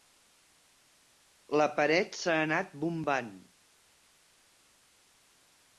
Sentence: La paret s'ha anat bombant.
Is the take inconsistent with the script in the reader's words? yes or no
no